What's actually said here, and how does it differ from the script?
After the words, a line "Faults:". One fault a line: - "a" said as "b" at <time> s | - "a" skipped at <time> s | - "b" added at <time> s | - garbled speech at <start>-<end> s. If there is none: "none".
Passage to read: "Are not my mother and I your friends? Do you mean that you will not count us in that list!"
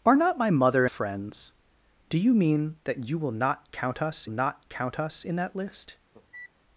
"Are not my mother friends? Do you mean that you will not count us not count us in that list!"
Faults:
- "and I your" skipped at 0.9 s
- "not count us" added at 4.3 s